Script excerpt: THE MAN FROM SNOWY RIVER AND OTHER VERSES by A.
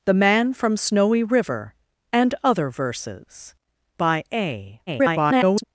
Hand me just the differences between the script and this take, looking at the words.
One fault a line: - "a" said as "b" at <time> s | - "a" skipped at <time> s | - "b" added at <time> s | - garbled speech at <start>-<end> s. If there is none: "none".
- garbled speech at 4.9-5.6 s